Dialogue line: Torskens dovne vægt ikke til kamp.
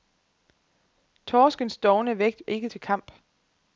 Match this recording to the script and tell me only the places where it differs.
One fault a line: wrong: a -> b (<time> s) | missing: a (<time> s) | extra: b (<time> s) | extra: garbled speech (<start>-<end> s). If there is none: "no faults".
no faults